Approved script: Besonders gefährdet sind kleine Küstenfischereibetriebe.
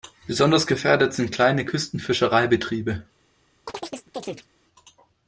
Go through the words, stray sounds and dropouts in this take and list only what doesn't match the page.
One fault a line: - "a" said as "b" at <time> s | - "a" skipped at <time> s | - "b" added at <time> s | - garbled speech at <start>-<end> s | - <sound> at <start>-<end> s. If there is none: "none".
- chirp at 3.7-4.5 s